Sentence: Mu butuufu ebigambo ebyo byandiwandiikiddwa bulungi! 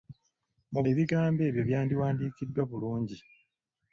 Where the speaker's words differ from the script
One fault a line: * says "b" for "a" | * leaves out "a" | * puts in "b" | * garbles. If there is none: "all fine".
* leaves out "butuufu"